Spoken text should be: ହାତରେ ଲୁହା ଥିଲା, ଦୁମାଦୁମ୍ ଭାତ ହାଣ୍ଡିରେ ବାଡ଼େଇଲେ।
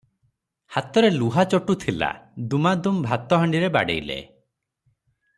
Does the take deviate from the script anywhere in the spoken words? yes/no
yes